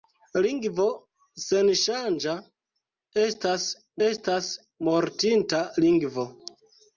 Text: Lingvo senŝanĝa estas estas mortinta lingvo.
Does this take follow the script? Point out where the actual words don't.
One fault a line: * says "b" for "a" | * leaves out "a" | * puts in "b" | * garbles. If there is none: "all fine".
all fine